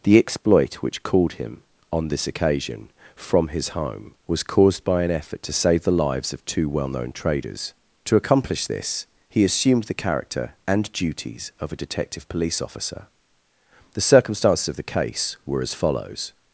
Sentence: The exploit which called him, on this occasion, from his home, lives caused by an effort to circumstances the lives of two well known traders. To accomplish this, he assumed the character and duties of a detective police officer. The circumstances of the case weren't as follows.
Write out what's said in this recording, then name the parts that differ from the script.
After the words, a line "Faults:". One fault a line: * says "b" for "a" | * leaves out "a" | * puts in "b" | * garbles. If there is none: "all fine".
The exploit which called him, on this occasion, from his home, was caused by an effort to save the lives of two well known traders. To accomplish this, he assumed the character and duties of a detective police officer. The circumstances of the case were as follows.
Faults:
* says "was" for "lives"
* says "save" for "circumstances"
* says "were" for "weren't"